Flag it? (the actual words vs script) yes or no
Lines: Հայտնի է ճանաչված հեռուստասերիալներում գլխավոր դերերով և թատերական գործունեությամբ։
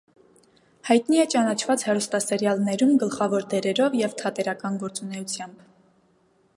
no